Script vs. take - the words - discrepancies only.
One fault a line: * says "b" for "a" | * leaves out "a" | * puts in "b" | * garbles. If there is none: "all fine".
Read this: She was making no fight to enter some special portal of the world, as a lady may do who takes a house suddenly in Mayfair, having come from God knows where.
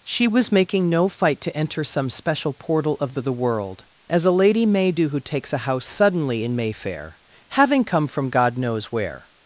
* puts in "the"